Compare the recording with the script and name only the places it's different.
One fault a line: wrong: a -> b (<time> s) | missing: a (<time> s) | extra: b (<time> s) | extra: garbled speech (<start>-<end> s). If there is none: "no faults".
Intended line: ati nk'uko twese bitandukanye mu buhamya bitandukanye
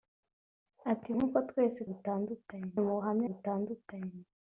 no faults